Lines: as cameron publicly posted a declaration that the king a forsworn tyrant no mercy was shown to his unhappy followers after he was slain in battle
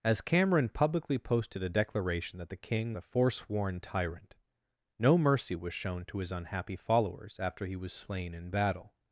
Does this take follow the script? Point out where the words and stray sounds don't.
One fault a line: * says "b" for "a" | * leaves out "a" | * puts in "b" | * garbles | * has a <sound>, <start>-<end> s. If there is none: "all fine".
all fine